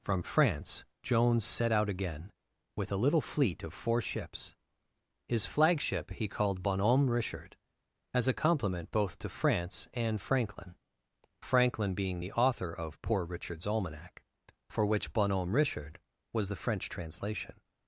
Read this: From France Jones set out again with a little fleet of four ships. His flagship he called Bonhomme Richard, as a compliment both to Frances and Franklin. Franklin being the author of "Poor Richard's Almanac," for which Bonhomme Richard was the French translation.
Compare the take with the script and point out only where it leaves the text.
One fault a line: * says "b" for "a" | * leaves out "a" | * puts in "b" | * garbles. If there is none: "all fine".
* says "France" for "Frances"